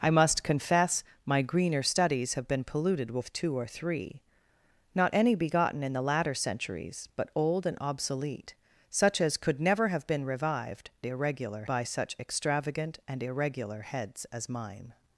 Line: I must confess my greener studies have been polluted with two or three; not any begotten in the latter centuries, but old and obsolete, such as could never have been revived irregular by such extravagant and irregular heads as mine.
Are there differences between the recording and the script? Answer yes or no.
no